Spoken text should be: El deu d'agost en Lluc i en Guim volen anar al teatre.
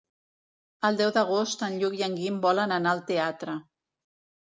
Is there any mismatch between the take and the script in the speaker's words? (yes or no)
no